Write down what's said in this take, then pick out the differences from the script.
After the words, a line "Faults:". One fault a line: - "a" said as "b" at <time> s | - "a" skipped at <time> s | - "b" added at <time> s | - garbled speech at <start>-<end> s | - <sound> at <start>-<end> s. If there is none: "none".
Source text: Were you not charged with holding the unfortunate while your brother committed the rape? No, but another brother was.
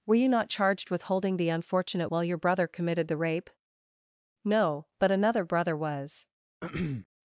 Were you not charged with holding the unfortunate while your brother committed the rape? No, but another brother was.
Faults:
- throat clearing at 6.6-7.1 s